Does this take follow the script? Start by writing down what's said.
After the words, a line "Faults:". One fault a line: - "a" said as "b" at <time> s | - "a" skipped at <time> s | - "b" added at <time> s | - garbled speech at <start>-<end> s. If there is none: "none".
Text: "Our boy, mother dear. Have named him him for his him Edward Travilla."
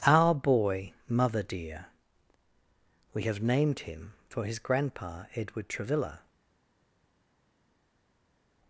"Our boy, mother dear. We have named him for his grandpa Edward Travilla."
Faults:
- "We" added at 3.1 s
- "him" skipped at 4.1 s
- "him" said as "grandpa" at 4.6 s